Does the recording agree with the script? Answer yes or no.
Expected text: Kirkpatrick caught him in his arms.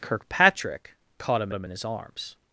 no